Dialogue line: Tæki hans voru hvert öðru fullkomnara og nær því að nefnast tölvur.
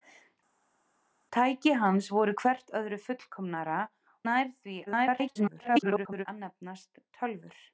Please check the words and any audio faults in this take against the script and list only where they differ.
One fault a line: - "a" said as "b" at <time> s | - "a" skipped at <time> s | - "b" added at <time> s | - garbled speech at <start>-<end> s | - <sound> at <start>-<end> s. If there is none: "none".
- "og" skipped at 3.8 s
- garbled speech at 4.9-6.3 s